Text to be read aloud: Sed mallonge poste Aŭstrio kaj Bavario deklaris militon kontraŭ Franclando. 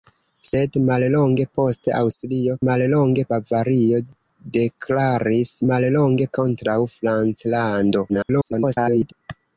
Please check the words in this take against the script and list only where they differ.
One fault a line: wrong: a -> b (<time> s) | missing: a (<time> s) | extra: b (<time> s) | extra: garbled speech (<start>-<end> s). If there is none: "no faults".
wrong: kaj -> mallonge (2.6 s)
wrong: militon -> mallonge (5.7 s)
extra: garbled speech (8.1-9.1 s)